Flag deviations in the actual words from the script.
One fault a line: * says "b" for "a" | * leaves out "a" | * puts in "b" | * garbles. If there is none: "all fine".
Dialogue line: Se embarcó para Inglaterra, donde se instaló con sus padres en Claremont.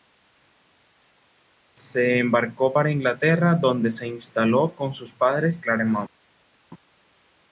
* leaves out "en"